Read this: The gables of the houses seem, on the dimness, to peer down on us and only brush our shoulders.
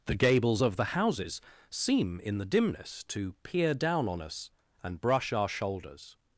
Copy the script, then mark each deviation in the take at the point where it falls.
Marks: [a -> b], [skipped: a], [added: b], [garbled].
The gables of the houses seem, [on -> in] the dimness, to peer down on us and [skipped: only] brush our shoulders.